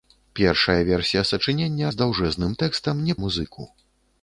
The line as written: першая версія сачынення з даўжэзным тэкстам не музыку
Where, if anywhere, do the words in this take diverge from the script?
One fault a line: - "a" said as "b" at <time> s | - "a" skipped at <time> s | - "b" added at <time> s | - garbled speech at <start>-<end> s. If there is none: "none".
none